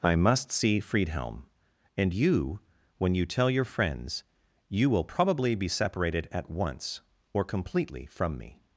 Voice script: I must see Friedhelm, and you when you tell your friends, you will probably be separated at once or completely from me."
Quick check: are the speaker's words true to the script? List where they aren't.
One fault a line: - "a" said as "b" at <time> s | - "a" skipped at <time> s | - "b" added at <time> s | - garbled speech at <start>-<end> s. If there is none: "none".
none